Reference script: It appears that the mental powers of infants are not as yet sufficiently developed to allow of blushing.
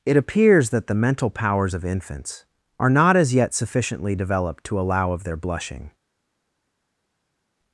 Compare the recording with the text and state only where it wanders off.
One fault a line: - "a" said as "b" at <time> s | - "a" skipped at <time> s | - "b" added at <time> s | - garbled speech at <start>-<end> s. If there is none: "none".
- "their" added at 5.2 s